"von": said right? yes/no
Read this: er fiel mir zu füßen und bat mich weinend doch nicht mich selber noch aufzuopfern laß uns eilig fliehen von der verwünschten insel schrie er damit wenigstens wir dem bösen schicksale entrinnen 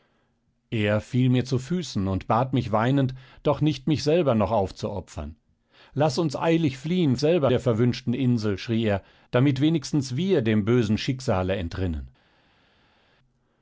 no